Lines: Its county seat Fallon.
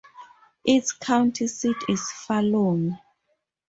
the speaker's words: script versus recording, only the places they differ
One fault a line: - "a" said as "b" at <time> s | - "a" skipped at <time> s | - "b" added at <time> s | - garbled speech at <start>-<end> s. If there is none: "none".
- "is" added at 1.9 s